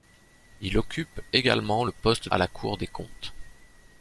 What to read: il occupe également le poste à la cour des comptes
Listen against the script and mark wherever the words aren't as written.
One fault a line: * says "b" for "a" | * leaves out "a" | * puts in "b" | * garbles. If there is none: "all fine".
all fine